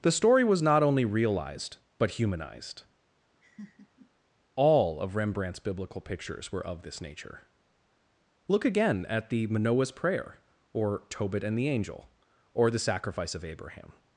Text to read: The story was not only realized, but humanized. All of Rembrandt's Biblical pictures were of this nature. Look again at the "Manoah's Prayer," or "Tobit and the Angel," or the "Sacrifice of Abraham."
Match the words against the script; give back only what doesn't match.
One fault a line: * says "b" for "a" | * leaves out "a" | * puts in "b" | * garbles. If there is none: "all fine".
all fine